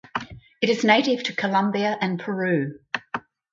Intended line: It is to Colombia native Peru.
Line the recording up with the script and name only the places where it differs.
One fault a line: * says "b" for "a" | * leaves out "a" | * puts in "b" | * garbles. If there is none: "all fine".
* puts in "native"
* says "and" for "native"